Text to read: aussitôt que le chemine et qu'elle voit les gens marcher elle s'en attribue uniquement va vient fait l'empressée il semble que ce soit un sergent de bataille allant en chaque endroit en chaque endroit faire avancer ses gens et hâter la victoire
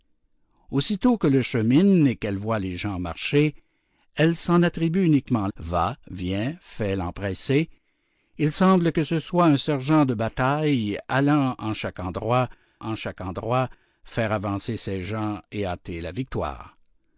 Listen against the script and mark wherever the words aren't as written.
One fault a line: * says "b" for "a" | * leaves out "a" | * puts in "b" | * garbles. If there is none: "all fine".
all fine